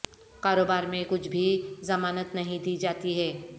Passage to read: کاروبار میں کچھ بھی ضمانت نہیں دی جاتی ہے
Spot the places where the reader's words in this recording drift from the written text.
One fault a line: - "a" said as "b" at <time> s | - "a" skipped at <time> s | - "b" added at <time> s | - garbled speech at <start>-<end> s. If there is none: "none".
none